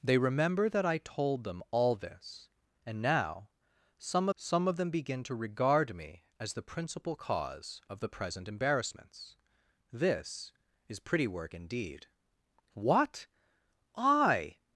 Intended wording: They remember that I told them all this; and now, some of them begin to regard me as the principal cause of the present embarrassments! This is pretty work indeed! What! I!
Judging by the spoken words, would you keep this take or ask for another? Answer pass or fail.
fail